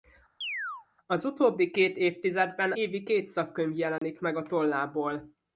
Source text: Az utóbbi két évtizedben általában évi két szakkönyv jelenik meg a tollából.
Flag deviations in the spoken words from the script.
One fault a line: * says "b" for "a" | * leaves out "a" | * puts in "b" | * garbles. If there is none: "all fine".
* leaves out "általában"